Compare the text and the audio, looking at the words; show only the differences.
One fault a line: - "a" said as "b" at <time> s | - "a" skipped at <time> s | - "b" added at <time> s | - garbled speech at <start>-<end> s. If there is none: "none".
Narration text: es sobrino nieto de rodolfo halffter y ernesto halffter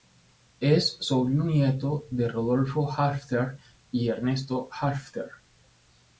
none